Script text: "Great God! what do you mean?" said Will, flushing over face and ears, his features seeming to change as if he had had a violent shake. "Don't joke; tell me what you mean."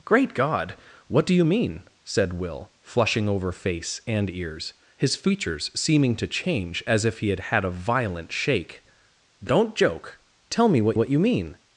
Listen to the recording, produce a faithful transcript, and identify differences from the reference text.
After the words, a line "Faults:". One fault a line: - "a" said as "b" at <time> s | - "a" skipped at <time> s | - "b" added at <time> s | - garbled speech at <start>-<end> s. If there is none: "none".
"Great God! what do you mean?" said Will, flushing over face and ears, his features seeming to change as if he had had a violent shake. "Don't joke; tell me what what you mean."
Faults:
- "what" added at 10.9 s